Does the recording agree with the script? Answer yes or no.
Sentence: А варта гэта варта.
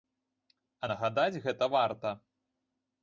no